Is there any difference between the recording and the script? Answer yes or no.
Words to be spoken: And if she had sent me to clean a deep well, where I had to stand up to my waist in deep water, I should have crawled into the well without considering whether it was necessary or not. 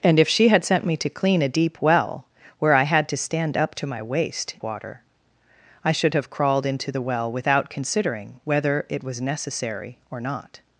yes